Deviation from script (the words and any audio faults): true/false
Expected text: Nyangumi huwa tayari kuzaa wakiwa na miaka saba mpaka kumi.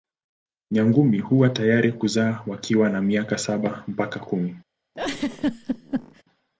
true